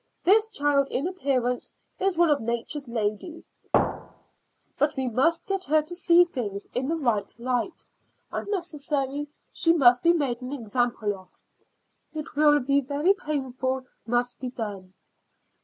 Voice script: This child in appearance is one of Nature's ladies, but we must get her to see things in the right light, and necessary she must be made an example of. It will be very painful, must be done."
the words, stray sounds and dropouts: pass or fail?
fail